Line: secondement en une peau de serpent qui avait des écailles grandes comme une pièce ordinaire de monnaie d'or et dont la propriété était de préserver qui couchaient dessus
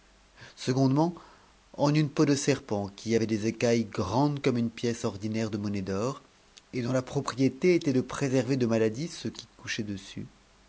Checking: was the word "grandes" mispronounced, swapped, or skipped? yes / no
no